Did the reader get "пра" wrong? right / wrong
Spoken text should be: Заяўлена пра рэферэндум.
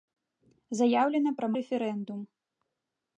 right